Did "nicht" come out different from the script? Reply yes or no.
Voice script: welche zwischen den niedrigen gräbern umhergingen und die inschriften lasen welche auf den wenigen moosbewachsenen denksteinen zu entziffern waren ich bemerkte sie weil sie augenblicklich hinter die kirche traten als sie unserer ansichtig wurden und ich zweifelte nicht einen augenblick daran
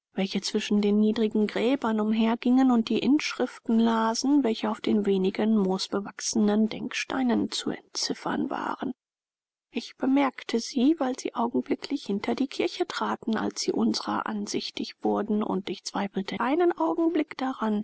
yes